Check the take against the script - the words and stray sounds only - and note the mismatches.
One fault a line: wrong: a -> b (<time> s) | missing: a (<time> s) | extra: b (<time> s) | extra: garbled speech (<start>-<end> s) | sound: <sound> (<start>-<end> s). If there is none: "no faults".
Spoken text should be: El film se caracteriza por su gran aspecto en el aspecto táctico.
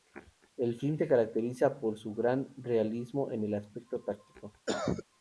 wrong: aspecto -> realismo (2.6 s)
sound: cough (4.7-5.0 s)